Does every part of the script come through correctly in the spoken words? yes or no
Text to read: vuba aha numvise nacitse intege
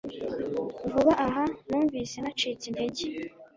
yes